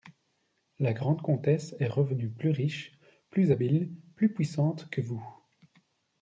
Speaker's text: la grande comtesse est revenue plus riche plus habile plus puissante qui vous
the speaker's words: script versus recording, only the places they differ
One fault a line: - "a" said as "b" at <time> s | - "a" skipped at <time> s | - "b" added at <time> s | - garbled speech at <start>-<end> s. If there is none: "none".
- "qui" said as "que" at 4.9 s